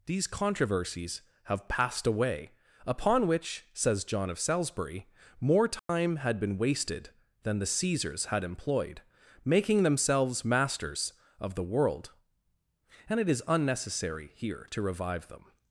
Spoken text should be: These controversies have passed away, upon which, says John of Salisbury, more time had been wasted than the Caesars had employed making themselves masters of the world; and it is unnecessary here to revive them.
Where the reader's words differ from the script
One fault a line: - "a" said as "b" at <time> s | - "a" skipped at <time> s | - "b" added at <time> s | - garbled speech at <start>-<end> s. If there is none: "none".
none